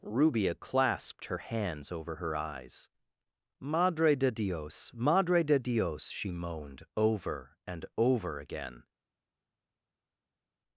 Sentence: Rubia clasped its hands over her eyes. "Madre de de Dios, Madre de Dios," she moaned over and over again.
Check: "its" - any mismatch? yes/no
yes